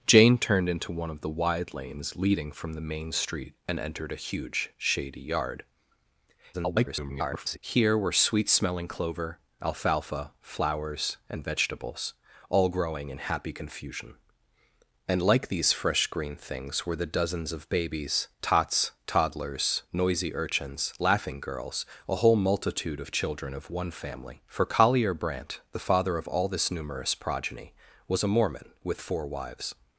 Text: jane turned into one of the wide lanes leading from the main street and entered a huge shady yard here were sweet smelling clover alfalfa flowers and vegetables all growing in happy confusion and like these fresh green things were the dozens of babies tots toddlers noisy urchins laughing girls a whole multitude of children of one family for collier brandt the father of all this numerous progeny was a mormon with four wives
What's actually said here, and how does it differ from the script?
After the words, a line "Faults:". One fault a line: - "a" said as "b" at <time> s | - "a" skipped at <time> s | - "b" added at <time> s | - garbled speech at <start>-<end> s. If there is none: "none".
jane turned into one of the wide lanes leading from the main street and entered a huge shady yard [garbled] here were sweet smelling clover alfalfa flowers and vegetables all growing in happy confusion and like these fresh green things were the dozens of babies tots toddlers noisy urchins laughing girls a whole multitude of children of one family for collier brandt the father of all this numerous progeny was a mormon with four wives
Faults:
- garbled speech at 6.5-7.6 s